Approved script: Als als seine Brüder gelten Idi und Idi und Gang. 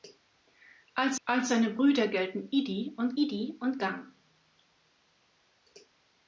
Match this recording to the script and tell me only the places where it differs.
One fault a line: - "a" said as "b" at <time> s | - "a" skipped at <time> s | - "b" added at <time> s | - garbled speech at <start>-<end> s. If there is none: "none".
none